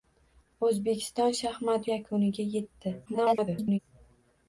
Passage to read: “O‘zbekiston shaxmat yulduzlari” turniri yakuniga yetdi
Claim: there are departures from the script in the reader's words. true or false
true